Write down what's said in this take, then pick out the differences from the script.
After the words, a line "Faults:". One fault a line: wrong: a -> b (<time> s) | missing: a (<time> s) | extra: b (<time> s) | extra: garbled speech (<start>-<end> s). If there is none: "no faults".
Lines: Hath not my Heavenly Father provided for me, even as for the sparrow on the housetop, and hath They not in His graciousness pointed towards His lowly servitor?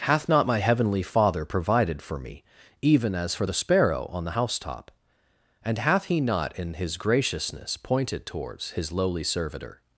Hath not my Heavenly Father provided for me, even as for the sparrow on the housetop, and hath He not in His graciousness pointed towards His lowly servitor?
Faults:
wrong: They -> He (6.1 s)